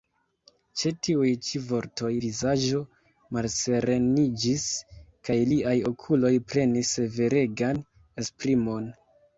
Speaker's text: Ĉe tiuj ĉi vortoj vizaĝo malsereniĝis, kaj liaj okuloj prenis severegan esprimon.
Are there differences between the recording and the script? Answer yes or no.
no